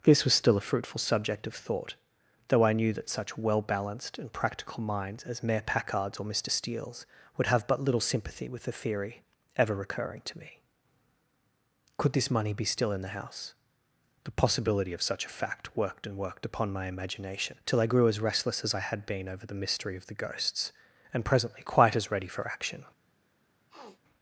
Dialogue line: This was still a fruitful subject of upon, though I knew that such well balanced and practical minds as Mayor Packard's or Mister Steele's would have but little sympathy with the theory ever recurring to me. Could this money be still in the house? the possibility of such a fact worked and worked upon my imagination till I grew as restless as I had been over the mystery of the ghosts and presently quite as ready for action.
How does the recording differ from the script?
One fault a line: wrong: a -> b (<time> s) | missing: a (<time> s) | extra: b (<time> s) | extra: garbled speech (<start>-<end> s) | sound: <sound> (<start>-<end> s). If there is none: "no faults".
wrong: upon -> thought (1.5 s)
sound: sniff (23.7-24.0 s)